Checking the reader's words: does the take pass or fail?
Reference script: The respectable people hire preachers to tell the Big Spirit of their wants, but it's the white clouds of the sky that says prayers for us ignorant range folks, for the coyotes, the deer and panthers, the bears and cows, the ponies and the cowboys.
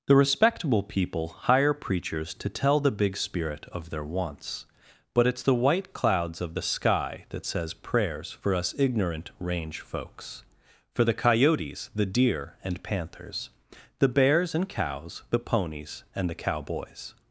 pass